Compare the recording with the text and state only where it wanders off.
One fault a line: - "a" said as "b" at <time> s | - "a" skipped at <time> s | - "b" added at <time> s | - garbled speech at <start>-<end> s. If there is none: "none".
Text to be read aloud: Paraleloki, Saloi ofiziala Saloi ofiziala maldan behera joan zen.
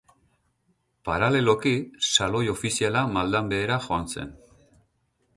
- "Saloi ofiziala" skipped at 3.0 s